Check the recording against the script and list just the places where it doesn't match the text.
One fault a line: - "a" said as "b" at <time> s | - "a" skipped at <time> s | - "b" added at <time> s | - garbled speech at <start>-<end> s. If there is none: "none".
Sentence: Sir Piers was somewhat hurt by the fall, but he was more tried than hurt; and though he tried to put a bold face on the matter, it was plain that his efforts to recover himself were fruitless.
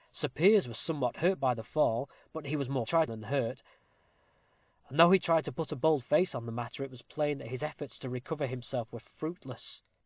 none